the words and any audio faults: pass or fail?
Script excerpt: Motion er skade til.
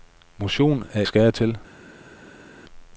pass